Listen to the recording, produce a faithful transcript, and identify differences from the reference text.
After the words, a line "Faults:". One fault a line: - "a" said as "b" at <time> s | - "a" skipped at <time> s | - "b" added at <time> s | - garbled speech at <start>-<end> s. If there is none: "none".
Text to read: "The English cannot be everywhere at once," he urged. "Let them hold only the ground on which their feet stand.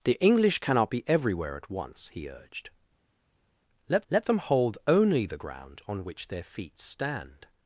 "The English cannot be everywhere at once," he urged. "Let let them hold only the ground on which their feet stand.
Faults:
- "let" added at 4.1 s